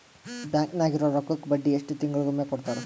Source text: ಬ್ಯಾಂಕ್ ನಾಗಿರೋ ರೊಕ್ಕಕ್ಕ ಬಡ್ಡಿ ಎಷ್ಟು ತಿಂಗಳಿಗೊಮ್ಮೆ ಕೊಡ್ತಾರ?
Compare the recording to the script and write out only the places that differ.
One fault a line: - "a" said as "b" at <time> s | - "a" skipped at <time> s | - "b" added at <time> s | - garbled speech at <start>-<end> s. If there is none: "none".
none